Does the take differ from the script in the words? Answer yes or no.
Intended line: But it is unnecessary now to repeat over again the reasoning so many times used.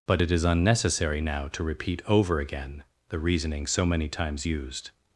no